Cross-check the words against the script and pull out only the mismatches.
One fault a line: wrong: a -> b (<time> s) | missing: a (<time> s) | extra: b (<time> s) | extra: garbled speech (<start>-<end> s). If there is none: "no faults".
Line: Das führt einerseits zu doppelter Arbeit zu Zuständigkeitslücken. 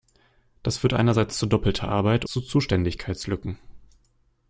no faults